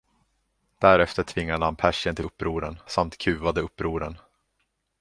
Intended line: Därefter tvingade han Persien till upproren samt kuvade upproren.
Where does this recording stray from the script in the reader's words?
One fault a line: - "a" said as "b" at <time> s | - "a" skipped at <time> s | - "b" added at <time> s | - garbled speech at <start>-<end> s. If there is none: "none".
none